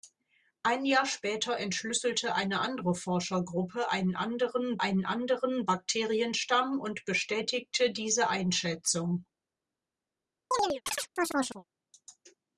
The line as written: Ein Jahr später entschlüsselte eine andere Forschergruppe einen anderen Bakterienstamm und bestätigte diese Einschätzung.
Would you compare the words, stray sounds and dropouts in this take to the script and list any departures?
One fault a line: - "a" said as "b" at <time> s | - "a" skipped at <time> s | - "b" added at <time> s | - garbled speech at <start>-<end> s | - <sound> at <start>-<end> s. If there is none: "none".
- "einen anderen" added at 4.8 s
- chirp at 10.5-11.6 s